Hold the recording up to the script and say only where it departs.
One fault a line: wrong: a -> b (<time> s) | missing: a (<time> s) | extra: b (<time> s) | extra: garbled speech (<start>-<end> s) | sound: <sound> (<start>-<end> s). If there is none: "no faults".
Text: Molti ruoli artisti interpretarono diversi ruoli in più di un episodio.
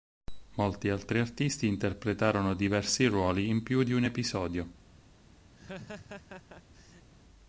wrong: ruoli -> altri (0.9 s)
sound: laugh (5.5-7.1 s)